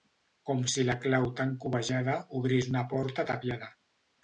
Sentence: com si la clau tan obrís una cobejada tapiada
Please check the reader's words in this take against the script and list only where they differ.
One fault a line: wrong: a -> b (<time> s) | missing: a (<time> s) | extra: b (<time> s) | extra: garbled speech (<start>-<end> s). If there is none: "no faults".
extra: cobejada (1.7 s)
wrong: cobejada -> porta (3.0 s)